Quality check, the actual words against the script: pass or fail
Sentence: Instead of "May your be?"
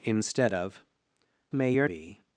pass